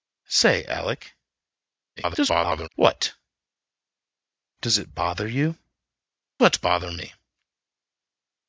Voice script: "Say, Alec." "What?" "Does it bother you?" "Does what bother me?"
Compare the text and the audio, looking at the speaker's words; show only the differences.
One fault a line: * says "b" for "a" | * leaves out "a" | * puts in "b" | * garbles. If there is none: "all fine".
* garbles
* leaves out "Does"